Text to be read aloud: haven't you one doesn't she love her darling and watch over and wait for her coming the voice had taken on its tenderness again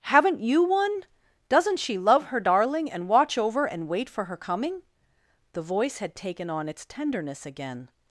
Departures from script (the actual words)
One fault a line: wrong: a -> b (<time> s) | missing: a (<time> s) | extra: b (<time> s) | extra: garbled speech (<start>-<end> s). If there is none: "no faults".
no faults